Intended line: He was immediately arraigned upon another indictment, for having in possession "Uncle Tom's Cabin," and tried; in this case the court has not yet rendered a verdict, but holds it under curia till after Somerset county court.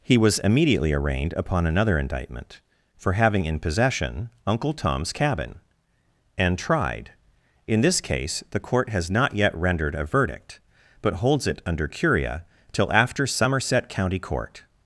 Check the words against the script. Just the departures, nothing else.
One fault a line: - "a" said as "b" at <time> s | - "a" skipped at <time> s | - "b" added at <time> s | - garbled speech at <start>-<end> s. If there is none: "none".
none